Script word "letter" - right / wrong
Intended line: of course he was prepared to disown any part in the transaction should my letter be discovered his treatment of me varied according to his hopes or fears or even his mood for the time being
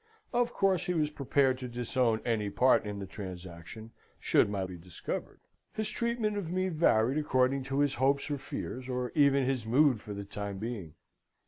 wrong